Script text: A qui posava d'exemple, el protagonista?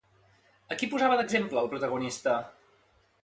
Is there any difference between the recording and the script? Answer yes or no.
no